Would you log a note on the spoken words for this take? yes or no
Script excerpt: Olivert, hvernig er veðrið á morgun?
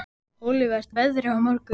yes